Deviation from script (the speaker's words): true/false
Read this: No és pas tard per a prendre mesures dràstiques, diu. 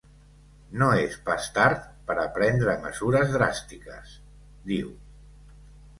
false